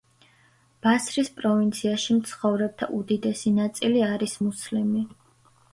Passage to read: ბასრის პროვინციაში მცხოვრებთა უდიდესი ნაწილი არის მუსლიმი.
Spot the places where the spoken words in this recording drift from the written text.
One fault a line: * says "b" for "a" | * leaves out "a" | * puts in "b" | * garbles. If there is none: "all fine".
all fine